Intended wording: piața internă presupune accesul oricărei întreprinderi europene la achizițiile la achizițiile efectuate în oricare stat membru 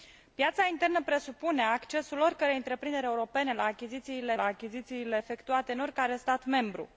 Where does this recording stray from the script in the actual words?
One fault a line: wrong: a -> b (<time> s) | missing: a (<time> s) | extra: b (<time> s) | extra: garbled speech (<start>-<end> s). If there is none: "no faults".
no faults